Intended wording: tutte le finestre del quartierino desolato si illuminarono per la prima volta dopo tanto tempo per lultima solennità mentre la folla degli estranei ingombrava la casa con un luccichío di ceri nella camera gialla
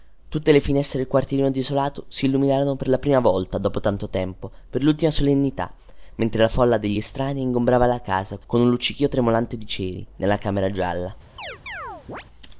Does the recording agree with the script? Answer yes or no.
no